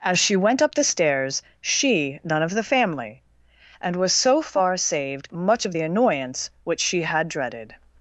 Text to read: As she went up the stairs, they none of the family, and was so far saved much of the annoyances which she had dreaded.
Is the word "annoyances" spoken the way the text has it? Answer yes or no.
no